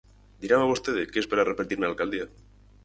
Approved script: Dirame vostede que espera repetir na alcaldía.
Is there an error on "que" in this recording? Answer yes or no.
no